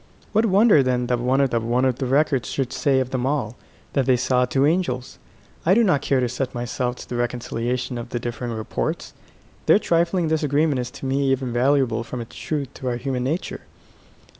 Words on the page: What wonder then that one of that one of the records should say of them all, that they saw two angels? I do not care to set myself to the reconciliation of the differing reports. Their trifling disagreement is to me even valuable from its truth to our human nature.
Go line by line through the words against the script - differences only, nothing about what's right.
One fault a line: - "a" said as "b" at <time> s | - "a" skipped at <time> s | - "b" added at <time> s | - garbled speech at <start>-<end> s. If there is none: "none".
none